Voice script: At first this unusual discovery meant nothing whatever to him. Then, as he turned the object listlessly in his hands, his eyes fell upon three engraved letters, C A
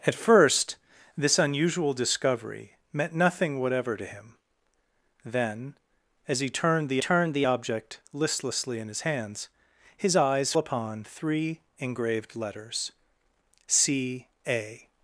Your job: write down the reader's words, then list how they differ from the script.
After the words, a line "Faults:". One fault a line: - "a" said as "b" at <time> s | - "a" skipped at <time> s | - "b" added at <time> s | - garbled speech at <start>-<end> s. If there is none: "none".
At first this unusual discovery meant nothing whatever to him. Then, as he turned the turned the object listlessly in his hands, his eyes upon three engraved letters, C A
Faults:
- "turned the" added at 7.0 s
- "fell" skipped at 10.5 s